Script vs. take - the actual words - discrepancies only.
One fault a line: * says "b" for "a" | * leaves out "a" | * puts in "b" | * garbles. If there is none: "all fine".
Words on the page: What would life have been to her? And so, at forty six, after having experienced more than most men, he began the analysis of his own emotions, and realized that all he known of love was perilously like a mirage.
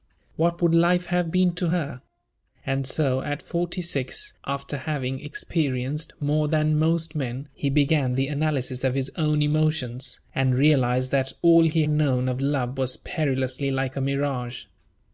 all fine